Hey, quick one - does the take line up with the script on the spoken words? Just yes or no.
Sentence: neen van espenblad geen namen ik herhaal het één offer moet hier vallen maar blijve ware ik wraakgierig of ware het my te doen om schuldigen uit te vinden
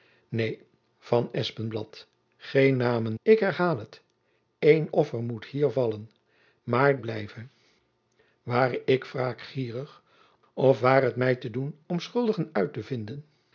yes